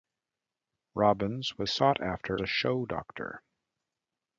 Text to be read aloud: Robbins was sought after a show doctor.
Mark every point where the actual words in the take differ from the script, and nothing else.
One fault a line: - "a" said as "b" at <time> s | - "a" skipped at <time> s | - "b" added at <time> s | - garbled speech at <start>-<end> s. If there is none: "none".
none